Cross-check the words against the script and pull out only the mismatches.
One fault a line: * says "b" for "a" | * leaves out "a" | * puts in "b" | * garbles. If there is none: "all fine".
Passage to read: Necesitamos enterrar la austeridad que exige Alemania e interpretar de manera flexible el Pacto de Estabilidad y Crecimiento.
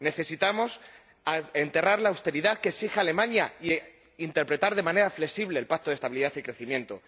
all fine